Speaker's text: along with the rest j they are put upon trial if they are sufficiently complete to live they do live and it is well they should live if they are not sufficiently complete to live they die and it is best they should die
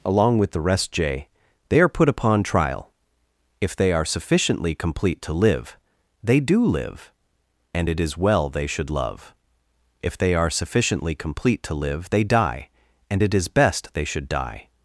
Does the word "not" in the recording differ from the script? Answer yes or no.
yes